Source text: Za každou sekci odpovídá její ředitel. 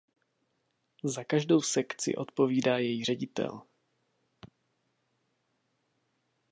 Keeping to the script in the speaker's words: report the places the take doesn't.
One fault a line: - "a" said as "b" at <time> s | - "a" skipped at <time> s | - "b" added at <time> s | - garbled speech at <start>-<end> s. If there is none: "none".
none